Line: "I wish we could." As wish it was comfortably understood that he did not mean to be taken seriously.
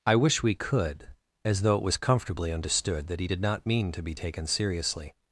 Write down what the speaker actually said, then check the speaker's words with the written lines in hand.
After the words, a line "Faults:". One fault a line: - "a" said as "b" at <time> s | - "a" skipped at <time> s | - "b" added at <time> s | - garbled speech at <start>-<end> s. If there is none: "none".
"I wish we could." As though it was comfortably understood that he did not mean to be taken seriously.
Faults:
- "wish" said as "though" at 1.6 s